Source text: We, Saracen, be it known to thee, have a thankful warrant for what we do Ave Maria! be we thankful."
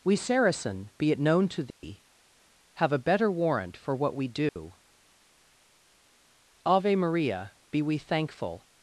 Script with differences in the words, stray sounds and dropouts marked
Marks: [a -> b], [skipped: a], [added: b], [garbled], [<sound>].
We, Saracen, be it known to thee, [dropout] have a [thankful -> better] warrant for what we do [dropout] Ave Maria! be we thankful."